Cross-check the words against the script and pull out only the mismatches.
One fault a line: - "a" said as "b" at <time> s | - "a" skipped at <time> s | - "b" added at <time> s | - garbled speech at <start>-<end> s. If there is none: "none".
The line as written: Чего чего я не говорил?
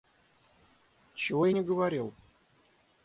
- "чего" skipped at 1.4 s